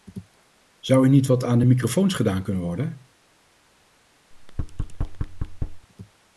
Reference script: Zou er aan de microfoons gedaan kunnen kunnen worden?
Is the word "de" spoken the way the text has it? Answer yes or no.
yes